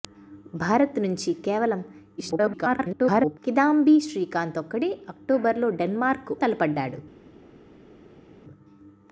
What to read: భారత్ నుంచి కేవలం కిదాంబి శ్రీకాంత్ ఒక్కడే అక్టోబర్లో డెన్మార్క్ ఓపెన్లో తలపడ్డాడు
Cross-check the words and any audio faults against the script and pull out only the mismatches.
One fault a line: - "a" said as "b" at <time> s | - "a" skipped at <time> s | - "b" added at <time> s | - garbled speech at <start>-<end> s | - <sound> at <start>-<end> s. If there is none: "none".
- garbled speech at 2.2-3.4 s
- "ఓపెన్లో" skipped at 6.3 s